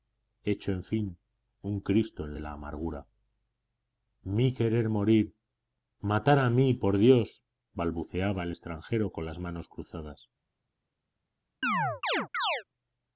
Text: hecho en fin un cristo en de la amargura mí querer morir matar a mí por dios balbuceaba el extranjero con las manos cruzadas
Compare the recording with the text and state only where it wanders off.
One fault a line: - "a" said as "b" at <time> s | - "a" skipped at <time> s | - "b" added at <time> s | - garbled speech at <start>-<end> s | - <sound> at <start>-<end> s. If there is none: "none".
- chirp at 11.6-12.6 s